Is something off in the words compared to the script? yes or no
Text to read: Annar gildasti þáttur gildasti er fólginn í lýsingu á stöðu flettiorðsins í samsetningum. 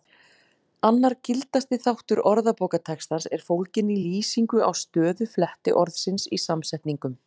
yes